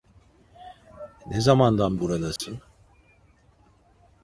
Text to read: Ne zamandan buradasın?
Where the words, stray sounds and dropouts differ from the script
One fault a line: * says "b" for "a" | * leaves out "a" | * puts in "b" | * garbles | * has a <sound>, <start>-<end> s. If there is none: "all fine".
* has a dropout, 2.4-2.4 s